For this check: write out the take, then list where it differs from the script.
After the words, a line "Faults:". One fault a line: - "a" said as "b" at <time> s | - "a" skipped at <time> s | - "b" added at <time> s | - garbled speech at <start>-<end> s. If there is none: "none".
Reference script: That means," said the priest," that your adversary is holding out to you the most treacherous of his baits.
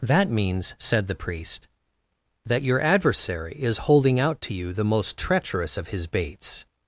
That means," said the priest," that your adversary is holding out to you the most treacherous of his baits.
Faults:
none